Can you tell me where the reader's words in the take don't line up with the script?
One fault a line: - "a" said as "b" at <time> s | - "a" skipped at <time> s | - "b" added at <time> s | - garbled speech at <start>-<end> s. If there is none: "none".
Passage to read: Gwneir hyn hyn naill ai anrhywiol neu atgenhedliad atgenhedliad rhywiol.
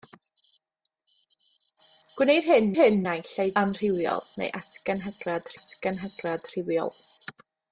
none